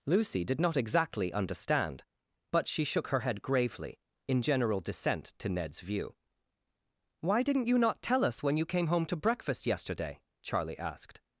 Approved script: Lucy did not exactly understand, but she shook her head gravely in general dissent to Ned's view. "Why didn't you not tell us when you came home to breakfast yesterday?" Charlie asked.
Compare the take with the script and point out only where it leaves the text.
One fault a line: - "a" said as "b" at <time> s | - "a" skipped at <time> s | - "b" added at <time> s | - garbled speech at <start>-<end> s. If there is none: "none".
none